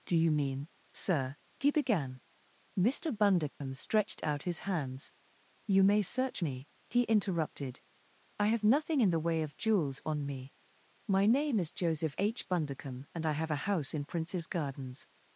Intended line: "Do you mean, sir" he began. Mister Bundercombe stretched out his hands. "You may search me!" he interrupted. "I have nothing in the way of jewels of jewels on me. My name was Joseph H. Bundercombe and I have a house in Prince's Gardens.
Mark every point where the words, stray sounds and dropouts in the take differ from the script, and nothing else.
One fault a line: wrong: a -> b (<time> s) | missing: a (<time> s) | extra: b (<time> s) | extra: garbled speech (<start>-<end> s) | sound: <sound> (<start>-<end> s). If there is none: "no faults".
sound: dropout (3.5-3.6 s)
missing: of jewels (10.0 s)
wrong: was -> is (11.6 s)